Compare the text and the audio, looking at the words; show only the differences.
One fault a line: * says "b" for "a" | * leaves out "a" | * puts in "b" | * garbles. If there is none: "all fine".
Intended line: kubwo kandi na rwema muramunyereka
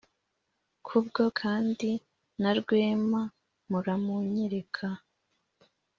all fine